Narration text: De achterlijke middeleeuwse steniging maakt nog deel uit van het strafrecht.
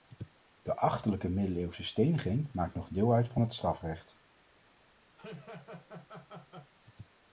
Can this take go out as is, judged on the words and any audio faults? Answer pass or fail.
fail